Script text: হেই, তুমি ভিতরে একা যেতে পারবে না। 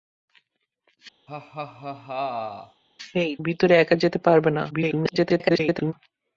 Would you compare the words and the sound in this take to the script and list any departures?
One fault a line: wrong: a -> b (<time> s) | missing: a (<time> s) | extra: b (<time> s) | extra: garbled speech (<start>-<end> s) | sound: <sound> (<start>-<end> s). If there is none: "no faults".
sound: laugh (1.3-2.8 s)
missing: তুমি (3.3 s)
extra: garbled speech (4.7-5.9 s)